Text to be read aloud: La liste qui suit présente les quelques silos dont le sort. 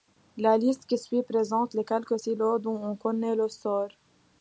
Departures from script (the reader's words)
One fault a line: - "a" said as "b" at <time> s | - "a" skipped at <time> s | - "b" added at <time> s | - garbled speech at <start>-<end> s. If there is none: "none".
- "on connaît" added at 2.8 s